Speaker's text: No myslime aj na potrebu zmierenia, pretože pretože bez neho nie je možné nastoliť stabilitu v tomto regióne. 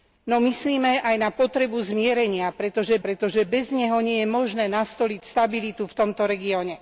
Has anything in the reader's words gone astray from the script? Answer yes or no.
no